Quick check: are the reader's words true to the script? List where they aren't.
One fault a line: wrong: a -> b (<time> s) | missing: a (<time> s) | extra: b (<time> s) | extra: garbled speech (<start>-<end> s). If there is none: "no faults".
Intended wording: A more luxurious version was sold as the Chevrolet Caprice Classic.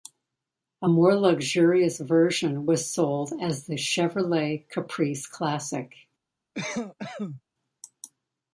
no faults